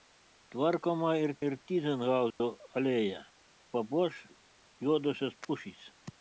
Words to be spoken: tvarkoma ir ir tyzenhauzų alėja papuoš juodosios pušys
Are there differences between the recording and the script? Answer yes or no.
no